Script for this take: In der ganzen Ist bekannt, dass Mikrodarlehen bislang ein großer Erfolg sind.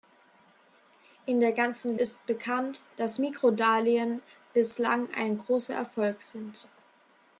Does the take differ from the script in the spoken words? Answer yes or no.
no